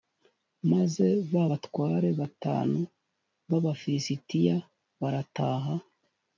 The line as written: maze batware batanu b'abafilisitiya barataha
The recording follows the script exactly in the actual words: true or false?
false